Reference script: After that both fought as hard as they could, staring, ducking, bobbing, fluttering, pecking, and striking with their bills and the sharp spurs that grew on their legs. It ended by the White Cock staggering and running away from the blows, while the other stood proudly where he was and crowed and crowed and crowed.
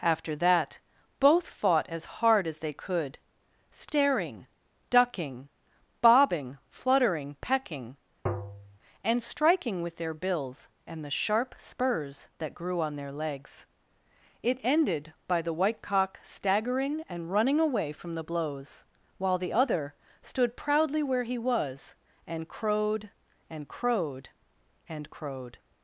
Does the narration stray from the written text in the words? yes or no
no